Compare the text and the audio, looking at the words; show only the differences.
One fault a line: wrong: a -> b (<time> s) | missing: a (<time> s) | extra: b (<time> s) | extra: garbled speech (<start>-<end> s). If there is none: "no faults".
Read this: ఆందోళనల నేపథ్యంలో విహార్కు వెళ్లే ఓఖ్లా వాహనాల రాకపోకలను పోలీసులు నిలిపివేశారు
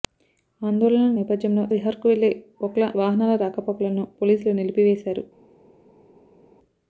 no faults